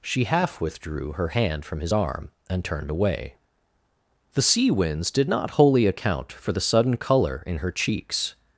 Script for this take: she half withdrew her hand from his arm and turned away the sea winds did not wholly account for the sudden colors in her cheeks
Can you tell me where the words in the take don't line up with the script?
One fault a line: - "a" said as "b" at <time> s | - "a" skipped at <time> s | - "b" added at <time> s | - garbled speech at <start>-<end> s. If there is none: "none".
- "colors" said as "color" at 7.0 s